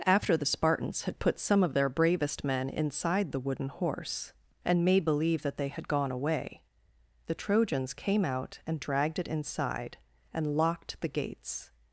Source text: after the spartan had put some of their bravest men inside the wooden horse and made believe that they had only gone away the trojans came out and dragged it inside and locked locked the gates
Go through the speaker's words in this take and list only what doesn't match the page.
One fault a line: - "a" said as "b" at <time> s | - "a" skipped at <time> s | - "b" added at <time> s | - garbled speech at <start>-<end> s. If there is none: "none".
- "spartan" said as "spartans" at 0.5 s
- "only" skipped at 5.9 s
- "locked" skipped at 11.0 s